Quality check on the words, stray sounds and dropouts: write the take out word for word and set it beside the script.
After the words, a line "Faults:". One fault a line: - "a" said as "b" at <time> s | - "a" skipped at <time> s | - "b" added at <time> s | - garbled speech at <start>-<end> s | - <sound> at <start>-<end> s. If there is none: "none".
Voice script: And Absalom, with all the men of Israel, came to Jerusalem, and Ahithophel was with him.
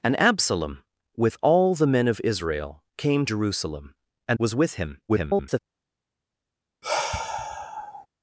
And Absalom, with all the men of Israel, came Jerusalem, and Was with him. [garbled]
Faults:
- "to" skipped at 3.3 s
- "Ahithophel" skipped at 4.4 s
- garbled speech at 5.1-5.6 s
- sigh at 6.8-8.1 s